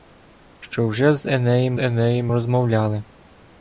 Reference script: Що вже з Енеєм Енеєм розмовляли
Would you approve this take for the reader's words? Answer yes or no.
yes